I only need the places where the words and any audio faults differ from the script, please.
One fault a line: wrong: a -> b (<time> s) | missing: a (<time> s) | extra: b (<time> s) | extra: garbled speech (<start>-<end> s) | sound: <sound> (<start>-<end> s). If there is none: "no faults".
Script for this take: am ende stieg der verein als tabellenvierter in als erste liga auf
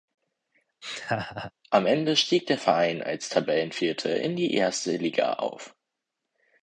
sound: laugh (0.8-1.5 s)
wrong: als -> die (4.4 s)